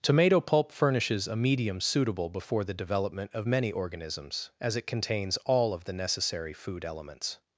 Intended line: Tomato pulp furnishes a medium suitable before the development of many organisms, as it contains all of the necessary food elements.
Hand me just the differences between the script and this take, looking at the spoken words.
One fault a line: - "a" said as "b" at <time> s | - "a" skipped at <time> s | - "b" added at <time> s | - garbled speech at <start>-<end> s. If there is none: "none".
none